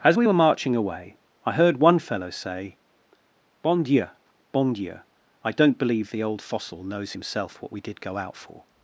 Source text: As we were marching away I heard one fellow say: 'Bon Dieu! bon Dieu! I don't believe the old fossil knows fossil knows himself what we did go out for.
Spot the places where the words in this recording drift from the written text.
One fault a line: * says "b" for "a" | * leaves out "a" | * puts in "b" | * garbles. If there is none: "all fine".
* leaves out "fossil knows"